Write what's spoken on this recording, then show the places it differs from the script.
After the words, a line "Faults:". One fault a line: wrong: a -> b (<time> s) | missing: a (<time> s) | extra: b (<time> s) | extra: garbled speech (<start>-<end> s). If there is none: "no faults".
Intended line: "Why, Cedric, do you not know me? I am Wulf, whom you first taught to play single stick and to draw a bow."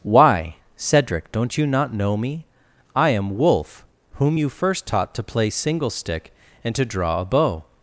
"Why, Cedric, don't you not know me? I am Wulf, whom you first taught to play single stick and to draw a bow."
Faults:
wrong: do -> don't (1.3 s)